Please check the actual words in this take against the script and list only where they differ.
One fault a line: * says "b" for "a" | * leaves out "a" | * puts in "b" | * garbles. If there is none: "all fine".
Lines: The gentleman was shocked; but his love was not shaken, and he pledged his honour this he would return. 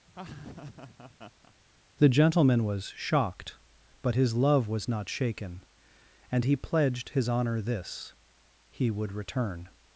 all fine